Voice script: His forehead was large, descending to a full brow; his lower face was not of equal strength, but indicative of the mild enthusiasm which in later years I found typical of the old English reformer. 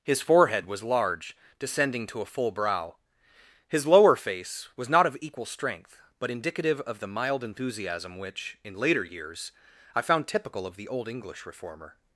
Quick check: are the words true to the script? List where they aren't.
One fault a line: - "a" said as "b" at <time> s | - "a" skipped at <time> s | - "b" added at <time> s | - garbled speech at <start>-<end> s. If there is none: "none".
none